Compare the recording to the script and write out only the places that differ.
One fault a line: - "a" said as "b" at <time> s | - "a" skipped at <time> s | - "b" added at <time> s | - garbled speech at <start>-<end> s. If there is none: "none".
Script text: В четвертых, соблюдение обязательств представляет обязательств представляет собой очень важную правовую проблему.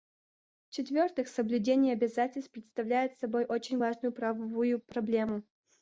- "обязательств представляет" skipped at 3.2 s